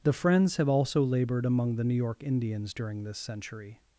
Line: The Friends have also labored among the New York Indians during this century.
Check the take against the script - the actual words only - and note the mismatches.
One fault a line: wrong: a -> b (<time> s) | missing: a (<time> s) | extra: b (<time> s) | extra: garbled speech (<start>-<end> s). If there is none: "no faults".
no faults